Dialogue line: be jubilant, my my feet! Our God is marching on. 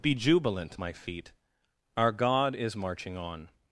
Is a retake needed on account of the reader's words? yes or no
yes